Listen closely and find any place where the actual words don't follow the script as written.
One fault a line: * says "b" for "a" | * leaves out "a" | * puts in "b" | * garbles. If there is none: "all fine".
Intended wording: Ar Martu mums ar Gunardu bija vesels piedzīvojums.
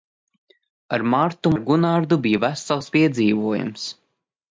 * leaves out "mums"